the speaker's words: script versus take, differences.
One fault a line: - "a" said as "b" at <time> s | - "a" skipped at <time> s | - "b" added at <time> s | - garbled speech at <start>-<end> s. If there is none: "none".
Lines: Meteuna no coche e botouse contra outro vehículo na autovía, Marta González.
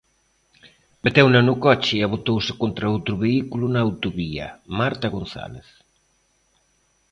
none